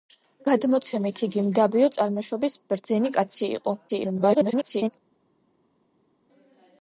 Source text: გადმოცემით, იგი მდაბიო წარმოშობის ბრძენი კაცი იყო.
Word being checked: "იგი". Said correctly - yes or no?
yes